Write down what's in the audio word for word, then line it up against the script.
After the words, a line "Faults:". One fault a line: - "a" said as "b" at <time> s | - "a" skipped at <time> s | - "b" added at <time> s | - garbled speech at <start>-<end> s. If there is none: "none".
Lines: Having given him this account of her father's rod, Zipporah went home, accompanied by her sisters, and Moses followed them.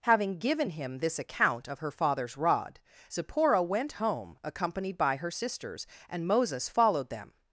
Having given him this account of her father's rod, Zipporah went home, accompanied by her sisters, and Moses followed them.
Faults:
none